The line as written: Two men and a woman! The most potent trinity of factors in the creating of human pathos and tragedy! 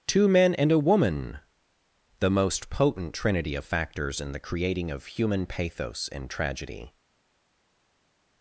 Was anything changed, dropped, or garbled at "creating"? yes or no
no